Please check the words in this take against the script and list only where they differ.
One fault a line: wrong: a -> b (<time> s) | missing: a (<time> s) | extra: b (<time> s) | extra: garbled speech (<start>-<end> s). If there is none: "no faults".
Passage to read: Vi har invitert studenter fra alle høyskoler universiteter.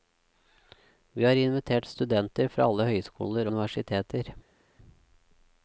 no faults